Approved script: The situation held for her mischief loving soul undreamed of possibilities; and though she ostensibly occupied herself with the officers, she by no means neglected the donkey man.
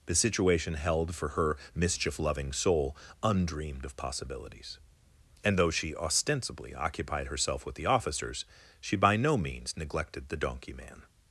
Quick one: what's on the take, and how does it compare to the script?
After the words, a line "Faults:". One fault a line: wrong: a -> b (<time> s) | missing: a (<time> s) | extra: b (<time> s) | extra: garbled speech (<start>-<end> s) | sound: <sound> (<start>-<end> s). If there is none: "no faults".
The situation held for her mischief loving soul undreamed of possibilities; and though she ostensibly occupied herself with the officers, she by no means neglected the donkey man.
Faults:
no faults